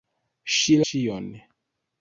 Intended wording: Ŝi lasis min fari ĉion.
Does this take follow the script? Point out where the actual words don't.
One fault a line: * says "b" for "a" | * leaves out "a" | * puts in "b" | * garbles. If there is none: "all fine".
* leaves out "lasis min fari"